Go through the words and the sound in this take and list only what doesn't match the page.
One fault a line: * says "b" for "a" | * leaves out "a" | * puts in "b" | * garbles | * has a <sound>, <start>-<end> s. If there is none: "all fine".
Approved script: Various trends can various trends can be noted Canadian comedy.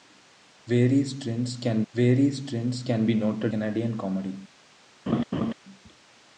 * has a laugh, 5.1-5.5 s